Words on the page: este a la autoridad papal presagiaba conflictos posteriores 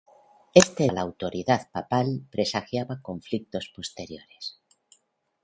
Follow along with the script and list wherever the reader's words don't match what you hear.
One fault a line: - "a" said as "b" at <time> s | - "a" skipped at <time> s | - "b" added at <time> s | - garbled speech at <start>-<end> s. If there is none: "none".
none